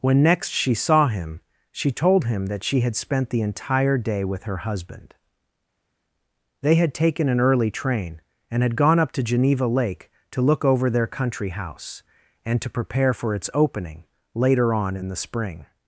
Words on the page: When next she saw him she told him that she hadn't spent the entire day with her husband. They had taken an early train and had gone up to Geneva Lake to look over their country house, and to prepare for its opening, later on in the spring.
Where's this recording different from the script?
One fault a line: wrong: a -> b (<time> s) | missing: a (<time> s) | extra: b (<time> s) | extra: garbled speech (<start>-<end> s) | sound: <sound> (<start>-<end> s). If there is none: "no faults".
wrong: hadn't -> had (2.8 s)